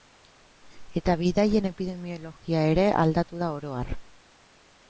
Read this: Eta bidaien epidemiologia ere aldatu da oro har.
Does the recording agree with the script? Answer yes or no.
yes